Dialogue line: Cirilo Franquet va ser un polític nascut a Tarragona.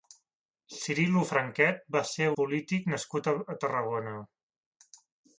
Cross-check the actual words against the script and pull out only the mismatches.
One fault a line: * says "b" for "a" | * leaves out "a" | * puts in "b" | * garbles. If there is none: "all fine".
* leaves out "un"